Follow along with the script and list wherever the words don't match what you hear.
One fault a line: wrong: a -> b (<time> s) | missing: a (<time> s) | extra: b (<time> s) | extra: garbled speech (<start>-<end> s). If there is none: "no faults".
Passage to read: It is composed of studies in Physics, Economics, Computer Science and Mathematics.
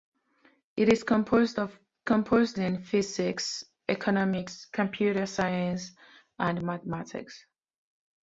wrong: studies -> composed (2.0 s)